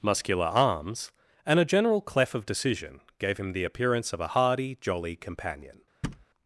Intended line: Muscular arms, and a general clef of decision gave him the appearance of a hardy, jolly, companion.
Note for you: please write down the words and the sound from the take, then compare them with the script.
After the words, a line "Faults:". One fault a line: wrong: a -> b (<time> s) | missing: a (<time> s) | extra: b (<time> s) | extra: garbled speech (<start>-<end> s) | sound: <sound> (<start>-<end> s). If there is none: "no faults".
Muscular arms, and a general clef of decision gave him the appearance of a hardy, jolly, companion.
Faults:
sound: thud (6.0-6.3 s)